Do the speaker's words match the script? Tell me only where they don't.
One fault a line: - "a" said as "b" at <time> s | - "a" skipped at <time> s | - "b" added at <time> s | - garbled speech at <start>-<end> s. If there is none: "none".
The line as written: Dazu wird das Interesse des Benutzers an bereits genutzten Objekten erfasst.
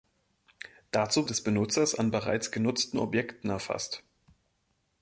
- "wird das Interesse" skipped at 1.3 s